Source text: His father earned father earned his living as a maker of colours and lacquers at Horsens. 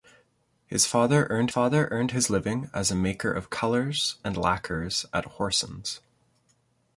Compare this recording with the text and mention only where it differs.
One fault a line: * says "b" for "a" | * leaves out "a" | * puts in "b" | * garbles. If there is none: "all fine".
all fine